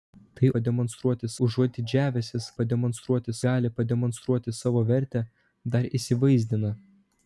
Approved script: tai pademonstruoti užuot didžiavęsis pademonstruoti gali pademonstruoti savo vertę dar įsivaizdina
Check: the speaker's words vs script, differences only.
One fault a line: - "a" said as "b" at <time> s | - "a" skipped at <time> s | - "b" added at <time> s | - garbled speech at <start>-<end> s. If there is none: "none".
none